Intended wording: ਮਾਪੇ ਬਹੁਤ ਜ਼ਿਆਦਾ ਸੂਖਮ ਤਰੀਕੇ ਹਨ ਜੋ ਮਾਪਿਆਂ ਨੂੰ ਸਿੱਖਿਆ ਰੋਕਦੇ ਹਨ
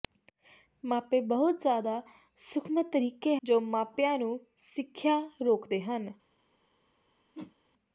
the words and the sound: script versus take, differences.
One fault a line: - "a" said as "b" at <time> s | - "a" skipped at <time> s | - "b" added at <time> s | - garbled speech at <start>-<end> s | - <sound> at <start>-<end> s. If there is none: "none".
- "ਹਨ" skipped at 3.4 s
- whoosh at 7.3-7.6 s